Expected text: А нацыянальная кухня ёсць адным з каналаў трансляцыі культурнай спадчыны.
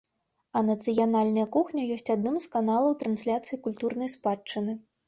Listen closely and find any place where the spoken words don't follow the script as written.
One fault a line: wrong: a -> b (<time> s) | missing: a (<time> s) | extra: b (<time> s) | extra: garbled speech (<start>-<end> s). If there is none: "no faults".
no faults